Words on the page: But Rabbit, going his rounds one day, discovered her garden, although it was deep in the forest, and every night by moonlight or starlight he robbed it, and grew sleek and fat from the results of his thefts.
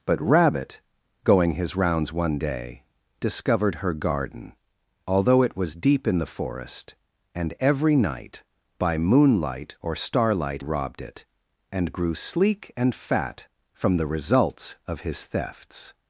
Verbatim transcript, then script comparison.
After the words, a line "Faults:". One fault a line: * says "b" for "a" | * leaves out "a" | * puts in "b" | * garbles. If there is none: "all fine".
But Rabbit, going his rounds one day, discovered her garden, although it was deep in the forest, and every night by moonlight or starlight robbed it, and grew sleek and fat from the results of his thefts.
Faults:
* leaves out "he"